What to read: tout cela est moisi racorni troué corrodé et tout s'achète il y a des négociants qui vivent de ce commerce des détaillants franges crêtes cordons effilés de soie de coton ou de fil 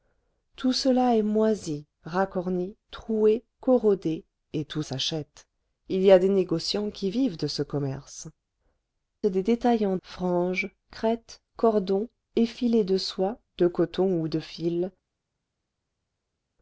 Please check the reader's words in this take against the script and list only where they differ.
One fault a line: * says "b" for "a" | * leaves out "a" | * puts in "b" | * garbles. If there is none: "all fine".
all fine